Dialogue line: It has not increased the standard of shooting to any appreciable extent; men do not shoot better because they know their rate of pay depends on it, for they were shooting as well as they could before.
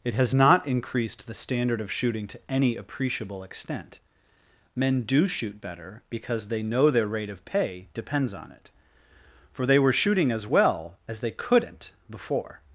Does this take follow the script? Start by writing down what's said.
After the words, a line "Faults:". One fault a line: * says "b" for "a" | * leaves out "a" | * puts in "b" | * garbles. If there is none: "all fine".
It has not increased the standard of shooting to any appreciable extent; men do shoot better because they know their rate of pay depends on it, for they were shooting as well as they couldn't before.
Faults:
* leaves out "not"
* says "couldn't" for "could"